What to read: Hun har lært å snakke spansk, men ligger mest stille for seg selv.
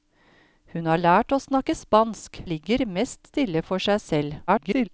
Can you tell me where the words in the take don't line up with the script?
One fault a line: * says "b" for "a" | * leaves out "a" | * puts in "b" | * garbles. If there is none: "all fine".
* leaves out "men"
* garbles